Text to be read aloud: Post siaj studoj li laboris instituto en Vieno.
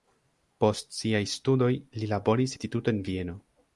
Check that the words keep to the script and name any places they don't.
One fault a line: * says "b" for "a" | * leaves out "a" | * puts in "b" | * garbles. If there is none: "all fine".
all fine